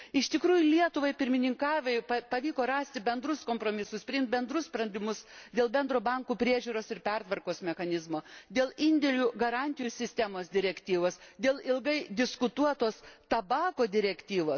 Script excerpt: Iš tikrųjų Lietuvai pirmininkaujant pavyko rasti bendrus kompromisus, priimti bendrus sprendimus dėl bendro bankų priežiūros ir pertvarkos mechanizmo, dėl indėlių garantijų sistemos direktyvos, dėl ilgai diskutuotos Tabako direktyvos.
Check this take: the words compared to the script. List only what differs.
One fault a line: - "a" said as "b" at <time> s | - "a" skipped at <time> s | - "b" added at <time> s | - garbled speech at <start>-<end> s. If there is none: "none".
none